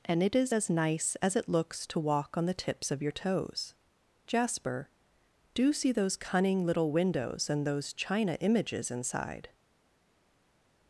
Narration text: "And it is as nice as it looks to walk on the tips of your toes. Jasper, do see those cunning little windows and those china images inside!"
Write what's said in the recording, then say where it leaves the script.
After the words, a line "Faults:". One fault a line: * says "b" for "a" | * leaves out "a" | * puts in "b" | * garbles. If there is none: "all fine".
"And it is as nice as it looks to walk on the tips of your toes. Jasper, do see those cunning little windows and those china images inside!"
Faults:
all fine